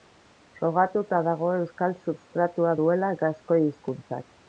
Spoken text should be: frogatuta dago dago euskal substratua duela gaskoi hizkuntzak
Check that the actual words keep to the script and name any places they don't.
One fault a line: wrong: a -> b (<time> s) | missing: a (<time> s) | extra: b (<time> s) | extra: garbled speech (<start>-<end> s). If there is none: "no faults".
missing: dago (1.5 s)